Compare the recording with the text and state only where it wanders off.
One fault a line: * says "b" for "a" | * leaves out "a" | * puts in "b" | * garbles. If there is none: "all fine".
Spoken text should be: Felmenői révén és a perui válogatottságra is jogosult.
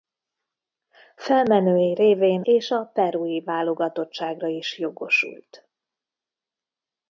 all fine